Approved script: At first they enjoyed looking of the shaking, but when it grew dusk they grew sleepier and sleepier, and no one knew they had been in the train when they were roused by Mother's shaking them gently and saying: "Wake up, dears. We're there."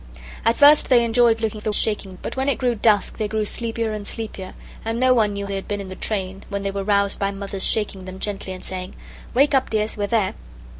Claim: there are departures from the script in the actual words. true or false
false